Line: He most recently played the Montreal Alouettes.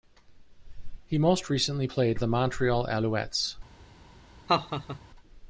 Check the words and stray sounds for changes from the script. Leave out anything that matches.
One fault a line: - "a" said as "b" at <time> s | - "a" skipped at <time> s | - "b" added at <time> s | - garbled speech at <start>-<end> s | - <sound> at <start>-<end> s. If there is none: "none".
- laugh at 4.5-5.0 s